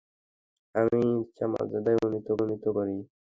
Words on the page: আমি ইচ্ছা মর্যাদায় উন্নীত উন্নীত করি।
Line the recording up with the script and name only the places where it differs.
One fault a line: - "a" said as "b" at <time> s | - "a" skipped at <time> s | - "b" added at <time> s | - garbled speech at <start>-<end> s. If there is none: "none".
none